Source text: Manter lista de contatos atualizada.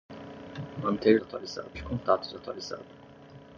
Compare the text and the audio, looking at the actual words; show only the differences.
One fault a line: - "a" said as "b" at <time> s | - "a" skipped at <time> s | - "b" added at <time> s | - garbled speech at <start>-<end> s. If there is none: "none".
- "lista" said as "atualizada" at 1.2 s